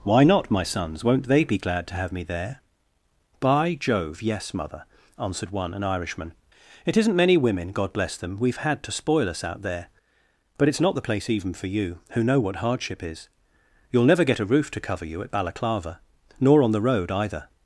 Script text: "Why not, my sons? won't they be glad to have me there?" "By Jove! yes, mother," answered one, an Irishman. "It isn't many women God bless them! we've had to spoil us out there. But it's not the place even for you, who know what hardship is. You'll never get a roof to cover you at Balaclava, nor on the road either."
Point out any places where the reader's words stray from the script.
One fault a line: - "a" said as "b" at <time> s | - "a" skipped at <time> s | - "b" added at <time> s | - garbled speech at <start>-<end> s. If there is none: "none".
none